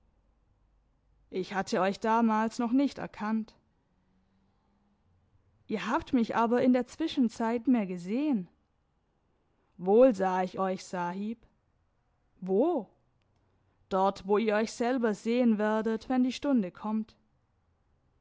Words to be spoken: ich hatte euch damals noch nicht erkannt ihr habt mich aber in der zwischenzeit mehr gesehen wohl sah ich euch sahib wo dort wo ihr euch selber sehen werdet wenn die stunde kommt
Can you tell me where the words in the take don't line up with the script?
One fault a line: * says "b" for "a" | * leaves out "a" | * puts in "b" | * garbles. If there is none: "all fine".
all fine